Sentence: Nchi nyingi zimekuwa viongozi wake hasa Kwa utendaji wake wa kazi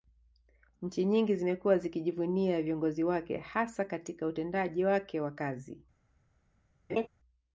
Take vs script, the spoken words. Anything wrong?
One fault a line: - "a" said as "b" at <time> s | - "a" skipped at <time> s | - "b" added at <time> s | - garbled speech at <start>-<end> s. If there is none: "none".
- "zikijivunia" added at 1.8 s
- "Kwa" said as "Katika" at 3.9 s